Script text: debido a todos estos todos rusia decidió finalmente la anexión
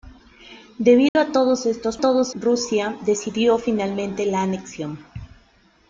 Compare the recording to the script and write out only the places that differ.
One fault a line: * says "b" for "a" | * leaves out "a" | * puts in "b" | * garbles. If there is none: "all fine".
all fine